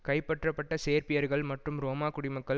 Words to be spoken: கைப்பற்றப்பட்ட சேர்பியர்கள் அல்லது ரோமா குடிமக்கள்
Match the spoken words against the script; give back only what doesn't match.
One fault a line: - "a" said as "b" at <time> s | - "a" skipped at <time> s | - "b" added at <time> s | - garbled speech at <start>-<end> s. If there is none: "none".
- "அல்லது" said as "மற்றும்" at 1.4 s